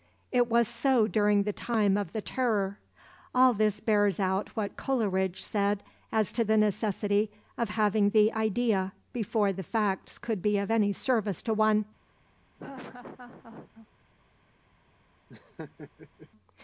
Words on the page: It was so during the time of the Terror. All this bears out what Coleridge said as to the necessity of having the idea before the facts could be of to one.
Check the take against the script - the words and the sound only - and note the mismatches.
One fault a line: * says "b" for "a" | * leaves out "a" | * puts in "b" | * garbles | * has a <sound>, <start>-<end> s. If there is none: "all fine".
* puts in "any service"
* has a laugh, 12.6-13.9 s
* has a laugh, 15.3-16.3 s